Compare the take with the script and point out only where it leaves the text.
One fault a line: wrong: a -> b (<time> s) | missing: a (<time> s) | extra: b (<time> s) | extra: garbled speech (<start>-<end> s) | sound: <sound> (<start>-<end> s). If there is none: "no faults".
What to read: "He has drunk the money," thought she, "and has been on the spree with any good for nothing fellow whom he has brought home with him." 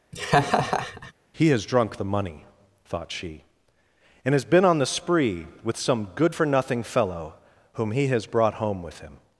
sound: laugh (0.1-1.1 s)
wrong: any -> some (5.8 s)